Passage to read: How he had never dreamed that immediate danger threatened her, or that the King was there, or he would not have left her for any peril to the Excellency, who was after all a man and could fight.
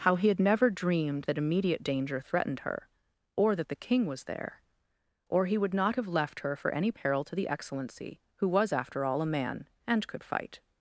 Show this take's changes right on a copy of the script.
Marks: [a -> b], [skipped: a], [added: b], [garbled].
How he had never dreamed that immediate danger threatened her, or that the King was there, or he would not have left her for any peril to the Excellency, who was after all a man and could fight.